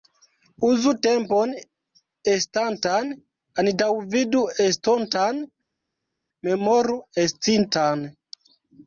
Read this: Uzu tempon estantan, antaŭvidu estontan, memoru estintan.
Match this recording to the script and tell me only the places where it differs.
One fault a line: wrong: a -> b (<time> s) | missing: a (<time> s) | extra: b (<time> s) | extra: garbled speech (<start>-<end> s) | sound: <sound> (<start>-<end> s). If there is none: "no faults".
no faults